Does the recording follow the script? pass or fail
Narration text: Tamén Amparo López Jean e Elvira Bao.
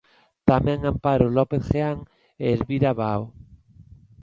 pass